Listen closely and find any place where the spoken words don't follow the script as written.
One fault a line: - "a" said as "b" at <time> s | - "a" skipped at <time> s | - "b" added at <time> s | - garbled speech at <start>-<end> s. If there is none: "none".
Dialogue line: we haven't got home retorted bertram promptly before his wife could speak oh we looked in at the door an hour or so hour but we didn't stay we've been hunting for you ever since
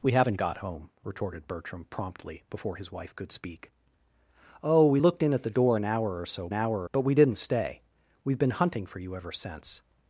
none